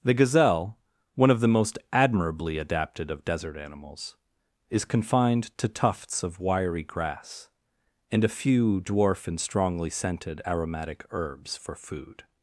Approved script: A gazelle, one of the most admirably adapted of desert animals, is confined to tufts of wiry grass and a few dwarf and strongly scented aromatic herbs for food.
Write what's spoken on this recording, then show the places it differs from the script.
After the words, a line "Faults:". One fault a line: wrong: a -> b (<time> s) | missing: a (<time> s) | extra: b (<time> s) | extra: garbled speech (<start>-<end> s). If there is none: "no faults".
The gazelle, one of the most admirably adapted of desert animals, is confined to tufts of wiry grass and a few dwarf and strongly scented aromatic herbs for food.
Faults:
wrong: A -> The (0.0 s)